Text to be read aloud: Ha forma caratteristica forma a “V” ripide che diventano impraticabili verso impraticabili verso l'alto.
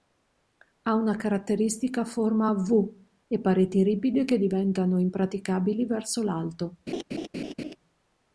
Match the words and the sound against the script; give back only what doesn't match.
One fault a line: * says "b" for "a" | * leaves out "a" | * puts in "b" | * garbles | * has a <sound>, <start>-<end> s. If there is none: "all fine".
* says "una" for "forma"
* puts in "e pareti"
* leaves out "impraticabili verso"
* has a laugh, 6.9-7.8 s